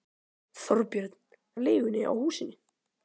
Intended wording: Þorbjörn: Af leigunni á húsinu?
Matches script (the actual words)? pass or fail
pass